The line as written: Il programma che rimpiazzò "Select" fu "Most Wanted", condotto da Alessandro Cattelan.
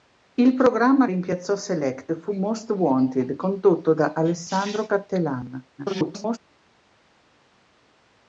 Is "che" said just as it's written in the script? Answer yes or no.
no